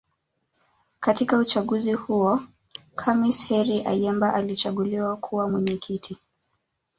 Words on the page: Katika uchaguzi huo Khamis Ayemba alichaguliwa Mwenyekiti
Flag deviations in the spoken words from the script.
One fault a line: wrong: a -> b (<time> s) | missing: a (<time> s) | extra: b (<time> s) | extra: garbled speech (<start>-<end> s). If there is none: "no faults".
extra: Heri (3.4 s)
extra: kuwa (5.2 s)